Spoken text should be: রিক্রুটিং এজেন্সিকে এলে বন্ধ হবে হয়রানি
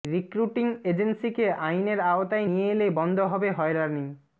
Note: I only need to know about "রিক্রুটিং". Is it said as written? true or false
true